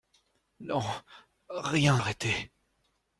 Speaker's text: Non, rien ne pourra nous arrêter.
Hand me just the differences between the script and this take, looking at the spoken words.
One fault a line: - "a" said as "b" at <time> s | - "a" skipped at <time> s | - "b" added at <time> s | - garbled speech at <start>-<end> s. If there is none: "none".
- "ne pourra nous" skipped at 2.0 s